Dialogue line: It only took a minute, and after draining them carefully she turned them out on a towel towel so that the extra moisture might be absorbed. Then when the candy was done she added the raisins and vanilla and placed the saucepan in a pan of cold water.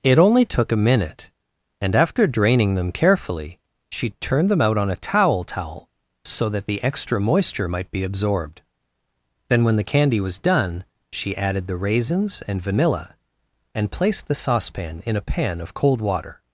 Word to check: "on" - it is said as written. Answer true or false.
true